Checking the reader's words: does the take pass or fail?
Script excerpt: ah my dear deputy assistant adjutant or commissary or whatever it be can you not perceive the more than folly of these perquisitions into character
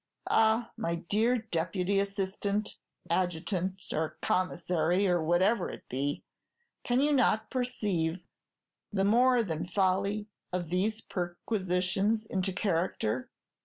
pass